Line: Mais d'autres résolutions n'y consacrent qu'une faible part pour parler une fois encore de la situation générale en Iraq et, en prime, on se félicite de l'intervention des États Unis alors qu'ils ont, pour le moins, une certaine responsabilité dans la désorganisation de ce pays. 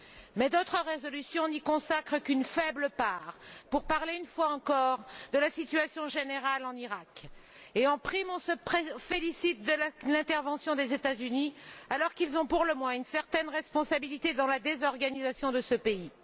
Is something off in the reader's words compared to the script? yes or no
no